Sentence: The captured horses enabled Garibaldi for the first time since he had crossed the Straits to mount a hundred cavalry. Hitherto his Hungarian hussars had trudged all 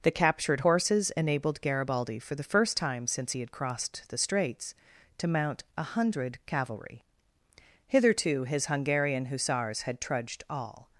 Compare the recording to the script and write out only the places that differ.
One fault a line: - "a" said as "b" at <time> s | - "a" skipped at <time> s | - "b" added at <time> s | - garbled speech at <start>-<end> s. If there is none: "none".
none